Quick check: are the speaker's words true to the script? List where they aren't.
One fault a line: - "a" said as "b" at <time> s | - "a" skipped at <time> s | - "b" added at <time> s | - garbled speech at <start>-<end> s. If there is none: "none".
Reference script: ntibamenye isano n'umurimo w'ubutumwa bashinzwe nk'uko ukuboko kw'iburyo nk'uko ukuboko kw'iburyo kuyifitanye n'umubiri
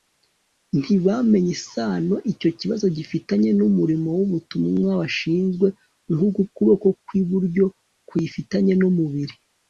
- "icyo kibazo gifitanye" added at 2.3 s
- "nk'uko ukuboko kw'iburyo" skipped at 7.7 s